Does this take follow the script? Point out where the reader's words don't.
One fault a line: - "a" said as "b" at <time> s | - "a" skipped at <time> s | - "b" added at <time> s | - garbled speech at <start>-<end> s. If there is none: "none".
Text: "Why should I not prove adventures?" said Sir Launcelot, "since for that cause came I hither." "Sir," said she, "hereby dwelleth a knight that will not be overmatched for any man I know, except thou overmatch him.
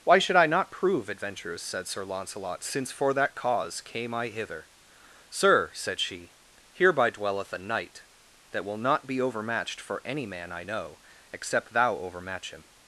none